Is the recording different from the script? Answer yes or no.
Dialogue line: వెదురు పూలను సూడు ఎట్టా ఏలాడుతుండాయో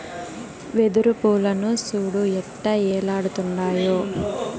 no